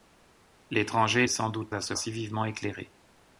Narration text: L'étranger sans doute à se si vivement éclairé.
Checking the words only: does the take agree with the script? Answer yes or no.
yes